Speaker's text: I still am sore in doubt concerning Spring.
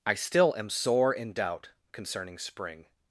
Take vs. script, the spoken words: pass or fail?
pass